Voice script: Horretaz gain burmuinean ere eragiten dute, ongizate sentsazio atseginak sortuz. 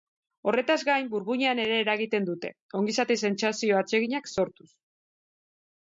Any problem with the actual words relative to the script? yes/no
no